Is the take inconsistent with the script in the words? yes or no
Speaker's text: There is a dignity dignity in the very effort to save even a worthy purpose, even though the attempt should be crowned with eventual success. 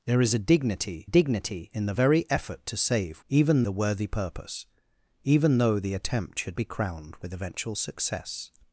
no